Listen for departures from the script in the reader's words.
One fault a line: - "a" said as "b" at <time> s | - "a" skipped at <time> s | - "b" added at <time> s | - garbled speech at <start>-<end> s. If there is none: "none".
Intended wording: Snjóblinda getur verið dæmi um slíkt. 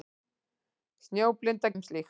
- "getur verið dæmi" skipped at 1.7 s